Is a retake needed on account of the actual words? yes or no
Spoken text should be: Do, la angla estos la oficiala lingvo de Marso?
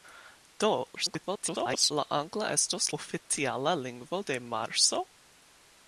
yes